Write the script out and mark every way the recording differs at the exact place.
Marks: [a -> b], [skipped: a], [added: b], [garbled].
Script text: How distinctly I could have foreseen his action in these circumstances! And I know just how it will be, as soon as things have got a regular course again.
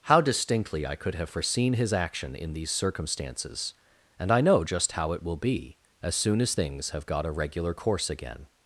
How distinctly I could have foreseen his action in these circumstances! And I know just how it will be, as soon as things have got a regular course again.